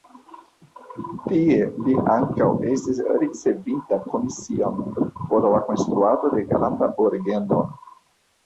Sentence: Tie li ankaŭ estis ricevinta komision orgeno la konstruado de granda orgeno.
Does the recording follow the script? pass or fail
fail